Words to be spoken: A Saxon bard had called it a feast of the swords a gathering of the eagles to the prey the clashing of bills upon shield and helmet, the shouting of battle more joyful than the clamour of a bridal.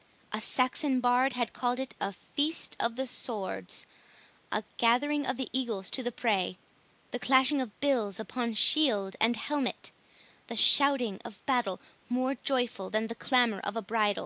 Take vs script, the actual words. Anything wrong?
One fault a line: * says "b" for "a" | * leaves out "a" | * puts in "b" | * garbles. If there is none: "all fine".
all fine